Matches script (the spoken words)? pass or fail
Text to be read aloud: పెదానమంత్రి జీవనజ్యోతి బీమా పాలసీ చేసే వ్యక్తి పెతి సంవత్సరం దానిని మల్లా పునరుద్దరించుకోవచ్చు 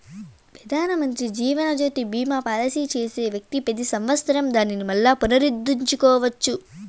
pass